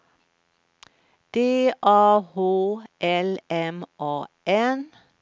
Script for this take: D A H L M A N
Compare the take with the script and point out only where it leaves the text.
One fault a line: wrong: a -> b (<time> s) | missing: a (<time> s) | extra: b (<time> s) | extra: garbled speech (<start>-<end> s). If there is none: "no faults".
no faults